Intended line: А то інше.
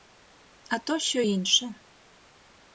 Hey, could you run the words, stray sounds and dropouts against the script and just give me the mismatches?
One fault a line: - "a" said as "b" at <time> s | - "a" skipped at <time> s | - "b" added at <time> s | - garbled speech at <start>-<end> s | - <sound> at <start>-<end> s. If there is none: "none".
- "що" added at 1.0 s